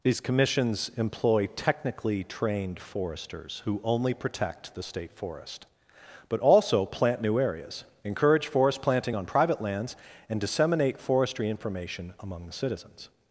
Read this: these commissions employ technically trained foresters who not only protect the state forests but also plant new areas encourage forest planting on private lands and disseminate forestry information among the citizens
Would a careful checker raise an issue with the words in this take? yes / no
yes